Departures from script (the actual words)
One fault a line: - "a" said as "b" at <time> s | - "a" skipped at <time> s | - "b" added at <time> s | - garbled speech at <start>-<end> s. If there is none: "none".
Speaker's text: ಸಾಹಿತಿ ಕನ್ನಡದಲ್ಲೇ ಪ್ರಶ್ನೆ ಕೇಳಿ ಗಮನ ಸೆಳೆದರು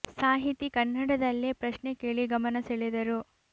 none